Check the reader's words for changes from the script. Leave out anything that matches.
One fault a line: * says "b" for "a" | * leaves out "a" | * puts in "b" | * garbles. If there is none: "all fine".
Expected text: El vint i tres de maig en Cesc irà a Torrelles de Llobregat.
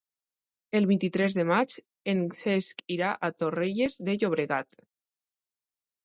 all fine